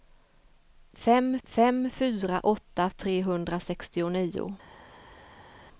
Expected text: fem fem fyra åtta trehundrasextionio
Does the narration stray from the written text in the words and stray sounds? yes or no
no